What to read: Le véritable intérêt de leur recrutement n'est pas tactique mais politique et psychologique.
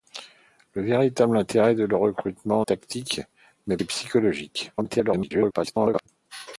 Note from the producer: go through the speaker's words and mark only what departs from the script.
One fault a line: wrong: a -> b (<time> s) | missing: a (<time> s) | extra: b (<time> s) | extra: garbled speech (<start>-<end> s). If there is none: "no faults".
missing: n'est pas (2.6 s)
missing: politique (3.8 s)
extra: garbled speech (4.8-6.1 s)